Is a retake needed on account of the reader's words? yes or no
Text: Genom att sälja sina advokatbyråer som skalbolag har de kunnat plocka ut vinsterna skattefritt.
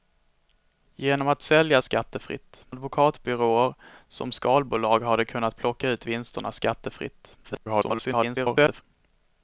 yes